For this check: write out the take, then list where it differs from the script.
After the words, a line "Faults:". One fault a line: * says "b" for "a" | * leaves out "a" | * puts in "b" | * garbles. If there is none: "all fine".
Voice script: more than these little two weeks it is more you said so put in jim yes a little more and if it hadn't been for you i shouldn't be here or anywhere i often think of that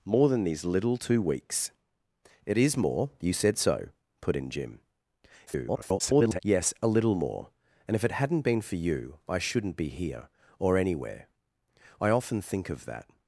more than these little two weeks it is more you said so put in jim [garbled] yes a little more and if it hadn't been for you i shouldn't be here or anywhere i often think of that
Faults:
* garbles